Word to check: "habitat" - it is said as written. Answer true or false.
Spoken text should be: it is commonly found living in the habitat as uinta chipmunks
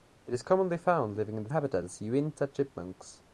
true